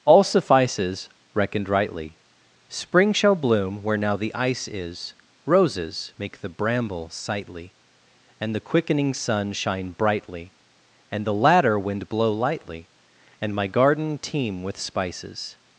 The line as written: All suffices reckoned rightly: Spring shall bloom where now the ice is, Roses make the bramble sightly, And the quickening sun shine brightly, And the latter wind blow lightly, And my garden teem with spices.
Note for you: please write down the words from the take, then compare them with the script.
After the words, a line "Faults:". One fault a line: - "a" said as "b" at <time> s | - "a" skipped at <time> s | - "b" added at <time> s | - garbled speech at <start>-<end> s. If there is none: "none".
All suffices reckoned rightly: Spring shall bloom where now the ice is, Roses make the bramble sightly, And the quickening sun shine brightly, And the latter wind blow lightly, And my garden teem with spices.
Faults:
none